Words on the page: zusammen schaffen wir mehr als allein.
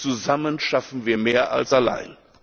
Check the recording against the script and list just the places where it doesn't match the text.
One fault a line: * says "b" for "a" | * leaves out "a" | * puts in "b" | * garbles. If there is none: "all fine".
all fine